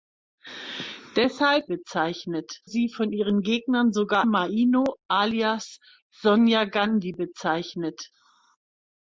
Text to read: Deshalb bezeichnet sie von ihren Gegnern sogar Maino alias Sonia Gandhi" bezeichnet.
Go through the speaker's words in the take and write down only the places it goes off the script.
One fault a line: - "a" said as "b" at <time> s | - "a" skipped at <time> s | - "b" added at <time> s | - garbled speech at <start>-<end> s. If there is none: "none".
none